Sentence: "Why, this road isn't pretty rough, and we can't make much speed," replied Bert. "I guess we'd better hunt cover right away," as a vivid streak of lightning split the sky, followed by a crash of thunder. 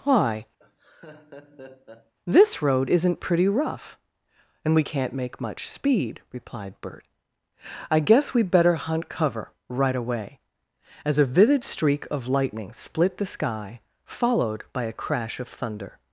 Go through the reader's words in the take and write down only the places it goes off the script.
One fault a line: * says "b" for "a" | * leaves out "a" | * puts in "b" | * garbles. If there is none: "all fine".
all fine